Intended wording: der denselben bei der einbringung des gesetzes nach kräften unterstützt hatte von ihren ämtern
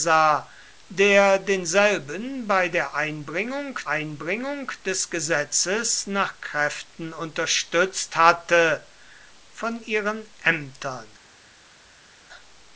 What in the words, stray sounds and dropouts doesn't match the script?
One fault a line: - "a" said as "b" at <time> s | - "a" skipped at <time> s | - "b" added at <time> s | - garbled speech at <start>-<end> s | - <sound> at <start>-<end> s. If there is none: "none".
- "einbringung" added at 3.9 s